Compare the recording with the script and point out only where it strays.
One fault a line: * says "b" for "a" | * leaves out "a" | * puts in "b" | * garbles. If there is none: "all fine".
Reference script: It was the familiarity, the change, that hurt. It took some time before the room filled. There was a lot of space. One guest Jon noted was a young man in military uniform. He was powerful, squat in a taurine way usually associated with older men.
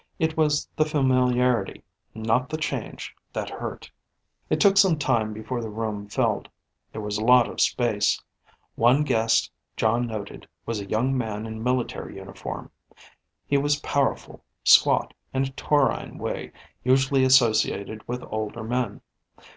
* puts in "not"